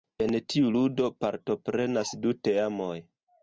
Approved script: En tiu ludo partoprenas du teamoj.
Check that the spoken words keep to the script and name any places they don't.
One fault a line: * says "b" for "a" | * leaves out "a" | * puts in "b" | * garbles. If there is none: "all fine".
all fine